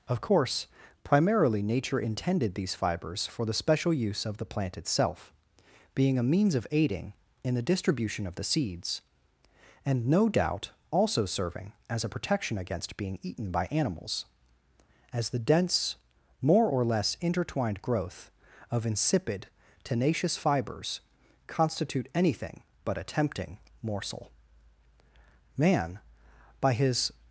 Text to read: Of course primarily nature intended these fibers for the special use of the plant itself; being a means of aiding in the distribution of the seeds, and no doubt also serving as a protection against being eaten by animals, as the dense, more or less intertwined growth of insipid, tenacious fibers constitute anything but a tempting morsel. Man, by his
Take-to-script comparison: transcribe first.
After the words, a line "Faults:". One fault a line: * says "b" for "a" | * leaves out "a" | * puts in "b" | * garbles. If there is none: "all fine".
Of course primarily nature intended these fibers for the special use of the plant itself; being a means of aiding in the distribution of the seeds, and no doubt also serving as a protection against being eaten by animals, as the dense, more or less intertwined growth of insipid, tenacious fibers constitute anything but a tempting morsel. Man, by his
Faults:
all fine